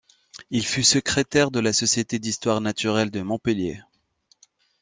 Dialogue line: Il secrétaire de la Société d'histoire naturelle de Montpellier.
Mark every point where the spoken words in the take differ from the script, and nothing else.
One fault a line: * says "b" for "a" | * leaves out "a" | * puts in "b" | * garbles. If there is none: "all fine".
* puts in "fut"